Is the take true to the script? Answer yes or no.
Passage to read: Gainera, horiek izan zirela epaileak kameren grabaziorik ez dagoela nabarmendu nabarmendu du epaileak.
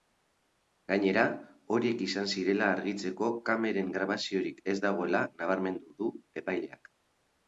no